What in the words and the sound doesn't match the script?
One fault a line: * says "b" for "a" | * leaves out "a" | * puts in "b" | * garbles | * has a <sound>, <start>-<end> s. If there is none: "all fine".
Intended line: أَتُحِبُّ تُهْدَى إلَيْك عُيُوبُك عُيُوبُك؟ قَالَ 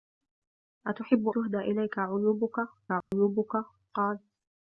* has a dropout, 3.0-3.1 s